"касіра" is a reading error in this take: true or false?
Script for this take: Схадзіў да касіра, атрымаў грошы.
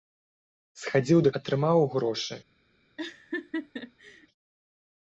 true